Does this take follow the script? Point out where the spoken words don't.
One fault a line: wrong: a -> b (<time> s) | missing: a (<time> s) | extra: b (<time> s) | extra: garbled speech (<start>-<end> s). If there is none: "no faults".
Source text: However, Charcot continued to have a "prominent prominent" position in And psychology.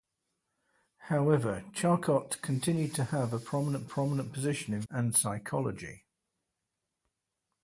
no faults